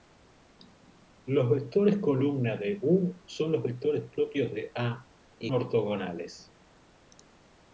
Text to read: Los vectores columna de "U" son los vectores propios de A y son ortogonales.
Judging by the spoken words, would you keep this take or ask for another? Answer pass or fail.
fail